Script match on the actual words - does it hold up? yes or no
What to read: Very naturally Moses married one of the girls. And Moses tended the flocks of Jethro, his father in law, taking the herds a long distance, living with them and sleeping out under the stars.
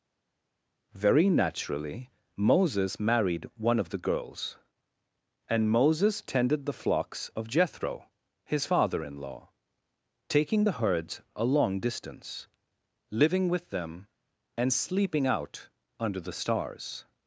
yes